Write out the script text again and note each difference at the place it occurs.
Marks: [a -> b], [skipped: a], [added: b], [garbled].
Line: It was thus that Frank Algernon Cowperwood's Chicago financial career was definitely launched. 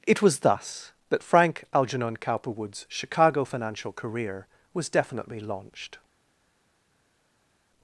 It was thus that Frank Algernon Cowperwood's Chicago financial career was definitely launched.